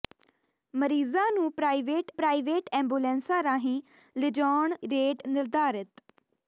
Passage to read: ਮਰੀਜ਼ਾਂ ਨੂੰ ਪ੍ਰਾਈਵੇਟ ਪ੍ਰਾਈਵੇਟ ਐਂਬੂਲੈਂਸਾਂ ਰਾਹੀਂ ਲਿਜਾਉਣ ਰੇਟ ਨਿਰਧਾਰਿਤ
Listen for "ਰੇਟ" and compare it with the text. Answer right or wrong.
right